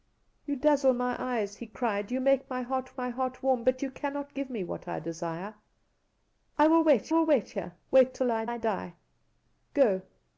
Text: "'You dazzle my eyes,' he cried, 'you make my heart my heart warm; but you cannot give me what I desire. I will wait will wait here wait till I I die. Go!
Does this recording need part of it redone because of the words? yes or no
no